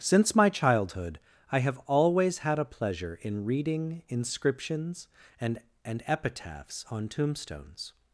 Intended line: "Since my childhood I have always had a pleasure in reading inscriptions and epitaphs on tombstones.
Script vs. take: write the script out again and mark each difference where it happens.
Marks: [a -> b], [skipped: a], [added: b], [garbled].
"Since my childhood I have always had a pleasure in reading inscriptions and [added: and] epitaphs on tombstones.